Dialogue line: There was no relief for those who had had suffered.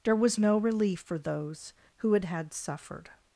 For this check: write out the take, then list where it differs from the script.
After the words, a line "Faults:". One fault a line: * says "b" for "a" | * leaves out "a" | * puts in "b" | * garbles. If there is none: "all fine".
There was no relief for those who had had suffered.
Faults:
all fine